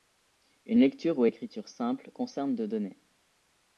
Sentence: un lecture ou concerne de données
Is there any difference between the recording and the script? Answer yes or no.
yes